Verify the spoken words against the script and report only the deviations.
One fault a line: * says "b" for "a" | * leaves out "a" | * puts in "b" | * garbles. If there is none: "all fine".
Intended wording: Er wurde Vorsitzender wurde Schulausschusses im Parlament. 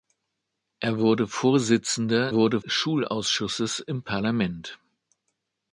all fine